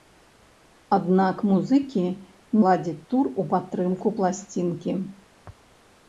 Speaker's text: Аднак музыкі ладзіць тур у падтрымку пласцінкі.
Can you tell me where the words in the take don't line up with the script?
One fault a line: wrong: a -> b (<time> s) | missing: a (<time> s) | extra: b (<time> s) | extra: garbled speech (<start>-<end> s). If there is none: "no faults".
no faults